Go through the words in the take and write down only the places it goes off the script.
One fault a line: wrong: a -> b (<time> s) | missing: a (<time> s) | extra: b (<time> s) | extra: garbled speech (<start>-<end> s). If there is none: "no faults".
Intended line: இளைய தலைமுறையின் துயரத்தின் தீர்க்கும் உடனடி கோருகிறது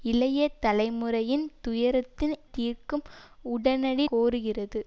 no faults